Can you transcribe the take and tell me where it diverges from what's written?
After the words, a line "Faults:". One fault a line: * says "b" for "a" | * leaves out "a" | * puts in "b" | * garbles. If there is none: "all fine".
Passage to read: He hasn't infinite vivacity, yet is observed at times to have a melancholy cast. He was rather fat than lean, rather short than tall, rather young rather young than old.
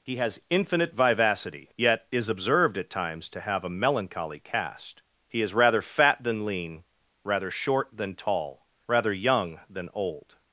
He has infinite vivacity, yet is observed at times to have a melancholy cast. He is rather fat than lean, rather short than tall, rather young than old.
Faults:
* says "has" for "hasn't"
* says "is" for "was"
* leaves out "rather young"